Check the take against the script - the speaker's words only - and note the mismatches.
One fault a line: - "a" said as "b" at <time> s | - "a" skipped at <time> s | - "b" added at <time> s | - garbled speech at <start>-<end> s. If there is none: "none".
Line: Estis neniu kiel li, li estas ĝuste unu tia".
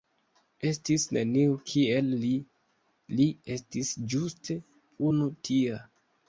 - "estas" said as "estis" at 3.6 s